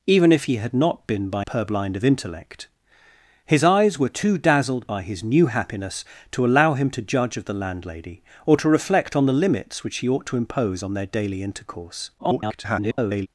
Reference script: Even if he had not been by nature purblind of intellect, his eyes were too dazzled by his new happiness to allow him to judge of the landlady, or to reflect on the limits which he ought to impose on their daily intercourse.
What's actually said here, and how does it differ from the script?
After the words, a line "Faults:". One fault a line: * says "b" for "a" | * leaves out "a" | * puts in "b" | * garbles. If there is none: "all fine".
Even if he had not been by purblind of intellect, his eyes were too dazzled by his new happiness to allow him to judge of the landlady, or to reflect on the limits which he ought to impose on their daily intercourse. [garbled]
Faults:
* leaves out "nature"
* garbles